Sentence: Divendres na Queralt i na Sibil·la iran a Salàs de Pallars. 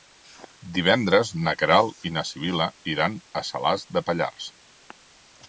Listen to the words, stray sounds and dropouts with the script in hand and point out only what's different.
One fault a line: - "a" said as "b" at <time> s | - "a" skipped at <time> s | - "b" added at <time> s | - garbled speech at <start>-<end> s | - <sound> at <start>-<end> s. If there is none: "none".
none